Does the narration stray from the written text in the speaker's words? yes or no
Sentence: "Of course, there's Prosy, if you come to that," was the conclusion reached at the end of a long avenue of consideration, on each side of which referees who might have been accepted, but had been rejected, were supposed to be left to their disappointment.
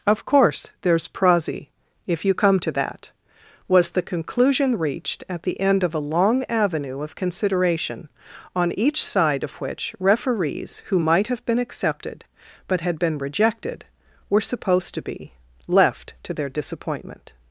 no